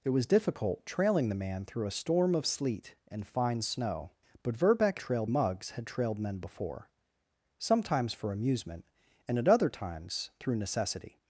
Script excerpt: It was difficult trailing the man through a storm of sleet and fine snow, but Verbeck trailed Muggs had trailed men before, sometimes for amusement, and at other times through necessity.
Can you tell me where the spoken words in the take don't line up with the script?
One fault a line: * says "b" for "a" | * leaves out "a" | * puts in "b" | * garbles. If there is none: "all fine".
all fine